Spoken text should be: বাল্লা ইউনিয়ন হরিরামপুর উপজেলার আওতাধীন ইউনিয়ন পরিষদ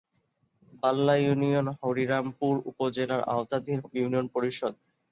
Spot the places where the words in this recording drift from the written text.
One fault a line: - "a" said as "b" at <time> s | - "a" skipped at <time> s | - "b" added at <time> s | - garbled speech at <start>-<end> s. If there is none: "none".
none